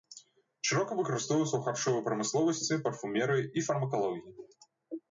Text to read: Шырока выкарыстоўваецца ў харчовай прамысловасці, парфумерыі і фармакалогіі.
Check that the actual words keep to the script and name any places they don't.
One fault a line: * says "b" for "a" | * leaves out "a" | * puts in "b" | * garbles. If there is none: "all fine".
all fine